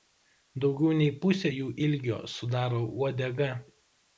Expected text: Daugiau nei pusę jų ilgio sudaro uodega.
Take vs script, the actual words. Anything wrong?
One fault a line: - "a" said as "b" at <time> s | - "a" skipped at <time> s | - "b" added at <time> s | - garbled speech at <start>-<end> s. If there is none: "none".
none